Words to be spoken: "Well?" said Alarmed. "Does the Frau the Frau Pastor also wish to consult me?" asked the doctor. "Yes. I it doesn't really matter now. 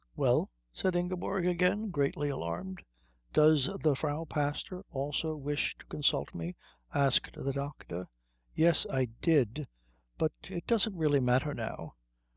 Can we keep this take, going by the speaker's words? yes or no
no